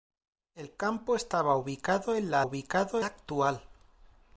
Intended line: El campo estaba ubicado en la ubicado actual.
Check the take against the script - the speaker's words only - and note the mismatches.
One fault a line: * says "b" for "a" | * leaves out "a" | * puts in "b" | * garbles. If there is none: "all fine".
all fine